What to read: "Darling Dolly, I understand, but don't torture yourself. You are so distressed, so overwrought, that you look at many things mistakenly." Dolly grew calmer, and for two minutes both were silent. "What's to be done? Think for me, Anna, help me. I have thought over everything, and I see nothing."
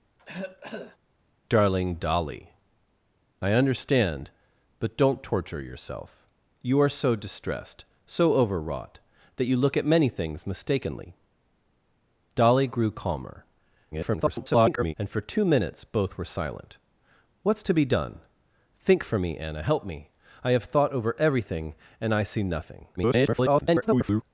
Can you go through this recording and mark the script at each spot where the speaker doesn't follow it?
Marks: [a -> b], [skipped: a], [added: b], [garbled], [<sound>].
[cough] "Darling Dolly, I understand, but don't torture yourself. You are so distressed, so overwrought, that you look at many things mistakenly." Dolly grew calmer, [garbled] and for two minutes both were silent. "What's to be done? Think for me, Anna, help me. I have thought over everything, and I see nothing." [garbled]